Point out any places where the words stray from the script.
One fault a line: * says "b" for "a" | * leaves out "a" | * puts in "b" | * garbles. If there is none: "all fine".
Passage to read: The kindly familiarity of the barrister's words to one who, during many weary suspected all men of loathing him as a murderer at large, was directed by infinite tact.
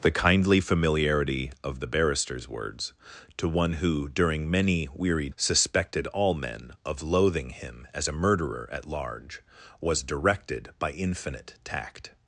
all fine